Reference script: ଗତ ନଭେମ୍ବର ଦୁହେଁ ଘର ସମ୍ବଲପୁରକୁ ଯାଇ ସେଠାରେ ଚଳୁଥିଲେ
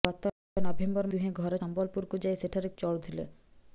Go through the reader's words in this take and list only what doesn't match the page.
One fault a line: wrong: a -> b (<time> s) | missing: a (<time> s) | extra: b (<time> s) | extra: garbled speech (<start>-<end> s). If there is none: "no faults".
no faults